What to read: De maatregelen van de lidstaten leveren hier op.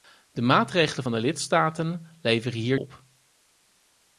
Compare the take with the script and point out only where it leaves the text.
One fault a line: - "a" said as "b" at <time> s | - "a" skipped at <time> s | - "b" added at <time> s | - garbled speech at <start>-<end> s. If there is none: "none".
none